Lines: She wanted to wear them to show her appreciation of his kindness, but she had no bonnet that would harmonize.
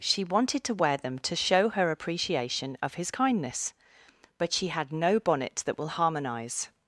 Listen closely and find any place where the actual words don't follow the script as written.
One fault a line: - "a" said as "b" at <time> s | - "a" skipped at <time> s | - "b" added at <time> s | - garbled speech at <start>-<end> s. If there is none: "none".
- "would" said as "will" at 5.8 s